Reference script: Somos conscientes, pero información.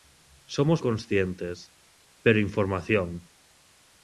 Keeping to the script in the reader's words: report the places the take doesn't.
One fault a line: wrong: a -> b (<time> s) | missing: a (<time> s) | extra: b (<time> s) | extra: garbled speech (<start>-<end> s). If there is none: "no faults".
no faults